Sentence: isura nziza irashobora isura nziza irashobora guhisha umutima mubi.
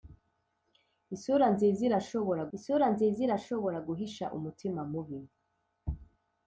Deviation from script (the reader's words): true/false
false